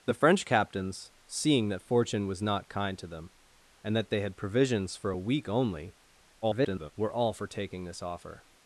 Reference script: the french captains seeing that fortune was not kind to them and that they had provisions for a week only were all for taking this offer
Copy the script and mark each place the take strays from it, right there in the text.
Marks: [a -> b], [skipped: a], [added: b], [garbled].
the french captains seeing that fortune was not kind to them and that they had provisions for a week only [garbled] were all for taking this offer